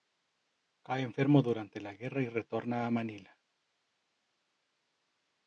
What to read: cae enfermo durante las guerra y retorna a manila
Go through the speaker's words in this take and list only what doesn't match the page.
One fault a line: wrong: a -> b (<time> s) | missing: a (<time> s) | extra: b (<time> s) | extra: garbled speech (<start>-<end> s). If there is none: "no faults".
wrong: las -> la (1.8 s)